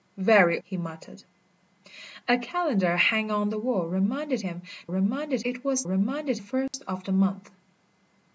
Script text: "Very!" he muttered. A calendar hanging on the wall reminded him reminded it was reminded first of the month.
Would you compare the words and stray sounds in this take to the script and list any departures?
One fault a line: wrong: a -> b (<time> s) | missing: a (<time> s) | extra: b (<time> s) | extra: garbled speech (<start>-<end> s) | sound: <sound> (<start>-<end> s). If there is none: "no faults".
sound: dropout (6.7-6.7 s)